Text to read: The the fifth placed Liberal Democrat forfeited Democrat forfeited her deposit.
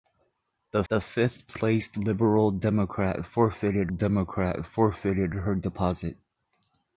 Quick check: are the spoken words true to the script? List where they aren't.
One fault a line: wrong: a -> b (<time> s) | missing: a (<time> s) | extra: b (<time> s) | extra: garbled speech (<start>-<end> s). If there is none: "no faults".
no faults